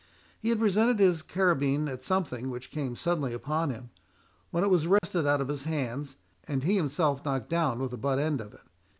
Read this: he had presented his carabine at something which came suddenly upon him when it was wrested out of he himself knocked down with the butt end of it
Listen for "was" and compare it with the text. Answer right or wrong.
right